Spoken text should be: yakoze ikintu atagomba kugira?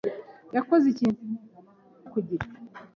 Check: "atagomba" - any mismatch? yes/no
yes